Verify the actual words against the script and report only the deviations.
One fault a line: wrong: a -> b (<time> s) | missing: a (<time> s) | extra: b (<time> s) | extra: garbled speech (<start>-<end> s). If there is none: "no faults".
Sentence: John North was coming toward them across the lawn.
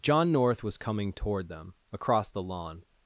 no faults